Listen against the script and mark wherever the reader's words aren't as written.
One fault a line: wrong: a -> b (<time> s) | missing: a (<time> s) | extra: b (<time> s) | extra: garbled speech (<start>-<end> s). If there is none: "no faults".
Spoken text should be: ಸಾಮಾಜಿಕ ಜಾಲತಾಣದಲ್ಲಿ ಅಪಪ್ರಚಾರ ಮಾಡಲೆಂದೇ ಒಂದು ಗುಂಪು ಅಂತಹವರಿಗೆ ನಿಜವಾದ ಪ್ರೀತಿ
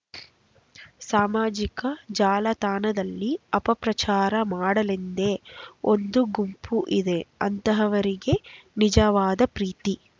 extra: ಇದೆ (7.0 s)